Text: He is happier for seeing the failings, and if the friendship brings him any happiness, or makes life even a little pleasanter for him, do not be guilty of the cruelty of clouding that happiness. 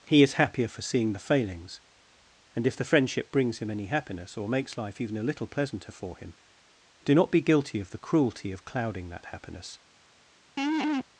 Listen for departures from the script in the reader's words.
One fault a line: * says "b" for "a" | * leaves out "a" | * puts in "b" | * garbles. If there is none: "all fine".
all fine